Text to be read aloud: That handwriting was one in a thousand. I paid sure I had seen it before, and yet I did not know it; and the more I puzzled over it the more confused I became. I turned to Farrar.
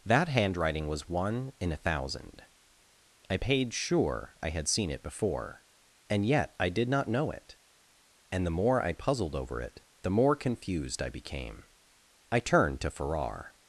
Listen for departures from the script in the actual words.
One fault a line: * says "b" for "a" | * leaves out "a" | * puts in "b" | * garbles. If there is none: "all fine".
all fine